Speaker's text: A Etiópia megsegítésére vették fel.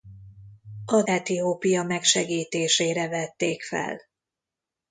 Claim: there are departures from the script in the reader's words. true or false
false